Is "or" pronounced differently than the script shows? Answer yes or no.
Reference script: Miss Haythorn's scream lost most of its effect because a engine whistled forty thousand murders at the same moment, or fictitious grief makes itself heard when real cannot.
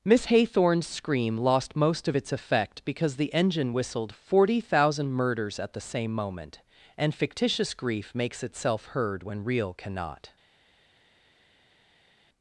yes